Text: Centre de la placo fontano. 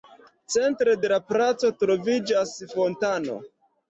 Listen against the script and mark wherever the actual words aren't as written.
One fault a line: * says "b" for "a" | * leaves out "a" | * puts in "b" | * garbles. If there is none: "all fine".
* puts in "troviĝas"